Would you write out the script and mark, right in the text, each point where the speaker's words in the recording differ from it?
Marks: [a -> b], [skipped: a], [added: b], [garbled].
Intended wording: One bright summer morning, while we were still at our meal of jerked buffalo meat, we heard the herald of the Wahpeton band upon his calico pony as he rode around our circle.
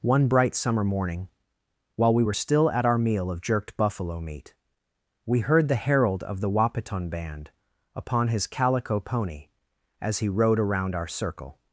One bright summer morning, while we were still at our meal of jerked buffalo meat, we heard the herald of the Wahpeton band upon his calico pony as he rode around our circle.